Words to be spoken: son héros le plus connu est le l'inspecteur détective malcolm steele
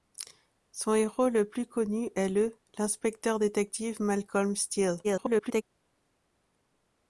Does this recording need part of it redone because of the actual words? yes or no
yes